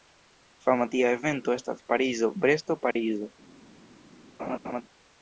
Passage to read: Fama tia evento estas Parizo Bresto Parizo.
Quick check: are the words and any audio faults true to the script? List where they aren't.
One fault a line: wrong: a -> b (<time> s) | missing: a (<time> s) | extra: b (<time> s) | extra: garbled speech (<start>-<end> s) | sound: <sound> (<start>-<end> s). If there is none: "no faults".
sound: dropout (2.9-3.0 s)
sound: laugh (4.4-4.8 s)